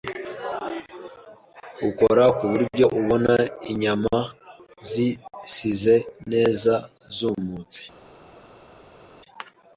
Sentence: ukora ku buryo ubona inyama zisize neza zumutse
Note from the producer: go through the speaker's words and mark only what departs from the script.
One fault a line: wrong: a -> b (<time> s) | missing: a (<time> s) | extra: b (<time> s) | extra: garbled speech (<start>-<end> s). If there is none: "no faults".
no faults